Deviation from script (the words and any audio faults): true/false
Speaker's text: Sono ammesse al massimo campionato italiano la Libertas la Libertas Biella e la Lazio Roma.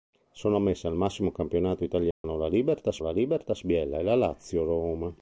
true